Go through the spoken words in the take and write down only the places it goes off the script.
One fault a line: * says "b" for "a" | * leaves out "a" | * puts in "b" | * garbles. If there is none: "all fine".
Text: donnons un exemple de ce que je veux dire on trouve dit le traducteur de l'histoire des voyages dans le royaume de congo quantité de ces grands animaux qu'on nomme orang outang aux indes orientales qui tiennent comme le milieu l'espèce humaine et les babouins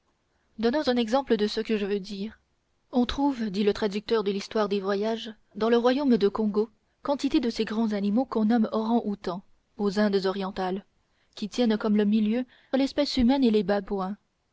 all fine